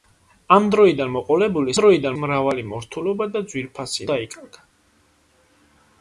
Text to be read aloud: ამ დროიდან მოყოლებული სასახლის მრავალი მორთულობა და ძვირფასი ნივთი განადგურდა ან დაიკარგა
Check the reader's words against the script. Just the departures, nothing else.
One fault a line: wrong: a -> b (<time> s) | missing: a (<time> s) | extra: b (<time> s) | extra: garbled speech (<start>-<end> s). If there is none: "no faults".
wrong: სასახლის -> დროიდან (1.8 s)
missing: ნივთი განადგურდა ან (4.1 s)